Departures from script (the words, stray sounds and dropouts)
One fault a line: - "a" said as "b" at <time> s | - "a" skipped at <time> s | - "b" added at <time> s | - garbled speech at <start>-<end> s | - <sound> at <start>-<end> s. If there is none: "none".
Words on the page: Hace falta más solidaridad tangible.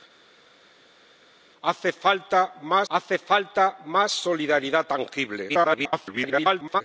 - "hace falta más" added at 2.9 s
- garbled speech at 5.5-6.8 s